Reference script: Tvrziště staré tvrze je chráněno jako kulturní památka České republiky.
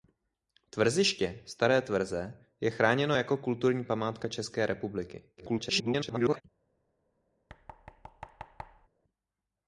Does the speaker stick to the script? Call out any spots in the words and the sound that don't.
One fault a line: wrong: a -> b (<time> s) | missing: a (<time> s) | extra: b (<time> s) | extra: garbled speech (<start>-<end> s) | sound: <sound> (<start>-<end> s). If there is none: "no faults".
extra: garbled speech (5.4-6.4 s)
sound: thud (7.5-8.9 s)